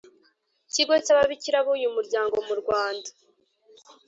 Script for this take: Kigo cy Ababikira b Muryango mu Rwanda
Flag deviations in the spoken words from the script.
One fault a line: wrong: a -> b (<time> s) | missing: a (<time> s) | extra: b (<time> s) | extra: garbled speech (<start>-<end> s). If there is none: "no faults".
extra: uyu (1.8 s)